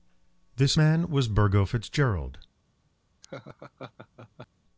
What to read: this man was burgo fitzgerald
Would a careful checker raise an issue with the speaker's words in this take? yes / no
no